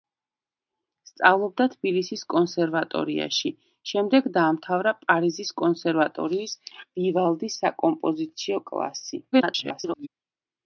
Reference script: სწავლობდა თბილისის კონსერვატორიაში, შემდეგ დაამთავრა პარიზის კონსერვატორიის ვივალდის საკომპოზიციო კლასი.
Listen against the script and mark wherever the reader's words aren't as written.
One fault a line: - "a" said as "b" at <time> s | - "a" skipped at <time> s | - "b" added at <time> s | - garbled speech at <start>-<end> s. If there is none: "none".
- garbled speech at 9.3-10.1 s